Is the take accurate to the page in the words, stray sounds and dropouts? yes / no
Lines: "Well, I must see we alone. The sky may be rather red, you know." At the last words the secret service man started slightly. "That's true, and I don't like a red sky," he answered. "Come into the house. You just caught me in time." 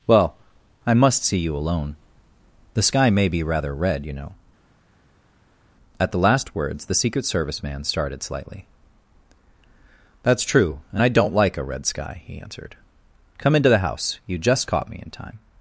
no